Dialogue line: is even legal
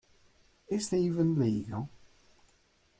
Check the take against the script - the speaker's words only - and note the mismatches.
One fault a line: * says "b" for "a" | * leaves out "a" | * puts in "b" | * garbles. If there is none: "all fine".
all fine